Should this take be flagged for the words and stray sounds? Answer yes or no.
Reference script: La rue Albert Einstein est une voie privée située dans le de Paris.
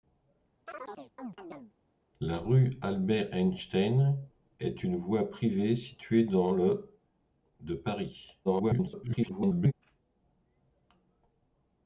yes